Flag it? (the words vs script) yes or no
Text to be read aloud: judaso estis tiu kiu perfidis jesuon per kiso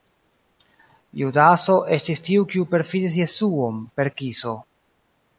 no